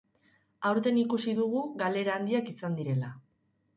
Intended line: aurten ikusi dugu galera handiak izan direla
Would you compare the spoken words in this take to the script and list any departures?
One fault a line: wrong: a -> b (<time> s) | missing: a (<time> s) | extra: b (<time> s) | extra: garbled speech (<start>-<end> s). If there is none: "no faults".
no faults